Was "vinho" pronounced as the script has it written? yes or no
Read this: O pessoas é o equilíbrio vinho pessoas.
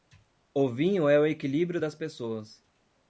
no